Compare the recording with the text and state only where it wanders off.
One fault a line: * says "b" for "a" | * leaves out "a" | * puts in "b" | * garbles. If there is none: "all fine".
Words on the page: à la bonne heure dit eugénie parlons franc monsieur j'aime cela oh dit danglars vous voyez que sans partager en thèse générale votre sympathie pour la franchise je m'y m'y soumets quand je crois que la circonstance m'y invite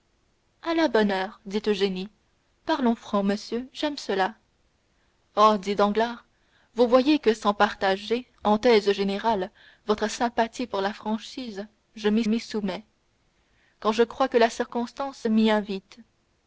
all fine